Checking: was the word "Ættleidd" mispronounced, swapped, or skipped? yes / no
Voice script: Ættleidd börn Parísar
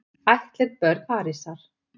no